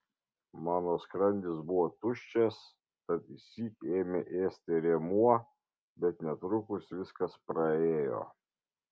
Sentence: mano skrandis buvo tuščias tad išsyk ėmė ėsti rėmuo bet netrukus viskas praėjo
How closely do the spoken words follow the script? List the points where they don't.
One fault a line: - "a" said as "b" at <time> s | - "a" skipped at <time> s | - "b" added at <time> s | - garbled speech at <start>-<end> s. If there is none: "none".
none